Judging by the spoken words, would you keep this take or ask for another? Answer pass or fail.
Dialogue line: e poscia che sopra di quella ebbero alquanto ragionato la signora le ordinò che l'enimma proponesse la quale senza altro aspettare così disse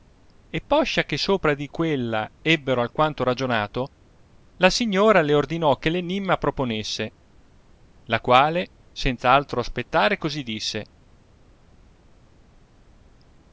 pass